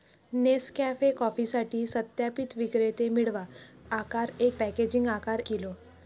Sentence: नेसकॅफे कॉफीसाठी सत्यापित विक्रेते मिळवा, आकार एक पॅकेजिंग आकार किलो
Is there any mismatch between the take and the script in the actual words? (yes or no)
no